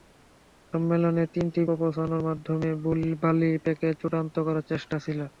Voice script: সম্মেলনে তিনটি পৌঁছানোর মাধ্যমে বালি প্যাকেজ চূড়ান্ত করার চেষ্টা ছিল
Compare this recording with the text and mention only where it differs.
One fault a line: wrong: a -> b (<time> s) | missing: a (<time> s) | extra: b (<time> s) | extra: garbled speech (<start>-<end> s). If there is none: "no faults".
no faults